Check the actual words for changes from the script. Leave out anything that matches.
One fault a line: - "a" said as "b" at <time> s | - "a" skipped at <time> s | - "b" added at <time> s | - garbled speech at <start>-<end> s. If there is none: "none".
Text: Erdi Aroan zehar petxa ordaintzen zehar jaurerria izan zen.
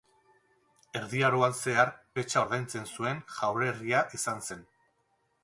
- "zehar" said as "zuen" at 2.9 s